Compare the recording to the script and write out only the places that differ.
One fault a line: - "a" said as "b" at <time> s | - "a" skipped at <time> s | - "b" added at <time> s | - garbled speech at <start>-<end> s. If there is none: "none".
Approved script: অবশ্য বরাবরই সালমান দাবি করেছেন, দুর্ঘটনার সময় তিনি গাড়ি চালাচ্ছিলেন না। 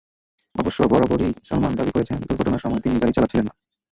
none